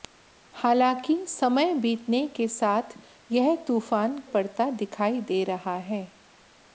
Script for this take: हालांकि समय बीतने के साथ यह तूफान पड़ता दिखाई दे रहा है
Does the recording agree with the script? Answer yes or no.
yes